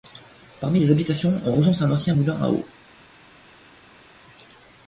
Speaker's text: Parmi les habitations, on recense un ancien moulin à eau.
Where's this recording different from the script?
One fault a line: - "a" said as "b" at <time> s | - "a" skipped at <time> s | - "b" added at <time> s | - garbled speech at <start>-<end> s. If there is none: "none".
none